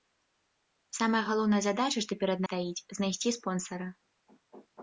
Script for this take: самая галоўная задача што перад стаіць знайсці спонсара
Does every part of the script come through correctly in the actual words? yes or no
yes